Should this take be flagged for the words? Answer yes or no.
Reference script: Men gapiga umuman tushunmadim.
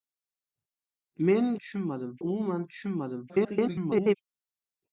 yes